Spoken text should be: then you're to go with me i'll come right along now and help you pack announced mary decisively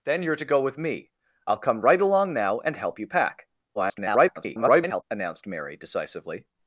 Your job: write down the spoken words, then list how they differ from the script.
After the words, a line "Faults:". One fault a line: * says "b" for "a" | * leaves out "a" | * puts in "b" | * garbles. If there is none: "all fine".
then you're to go with me i'll come right along now and help you pack [garbled] announced mary decisively
Faults:
* garbles